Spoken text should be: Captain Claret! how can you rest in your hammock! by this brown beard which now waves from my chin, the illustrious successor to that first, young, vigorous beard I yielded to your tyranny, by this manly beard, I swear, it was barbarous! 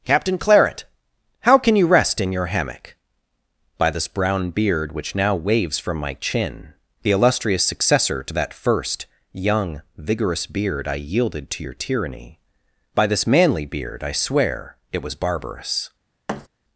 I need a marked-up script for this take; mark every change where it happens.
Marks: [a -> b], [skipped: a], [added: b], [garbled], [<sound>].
Captain Claret! how can you rest in your hammock! by this brown beard which now waves from my chin, the illustrious successor to that first, young, vigorous beard I yielded to your tyranny, by this manly beard, I swear, it was barbarous! [thud]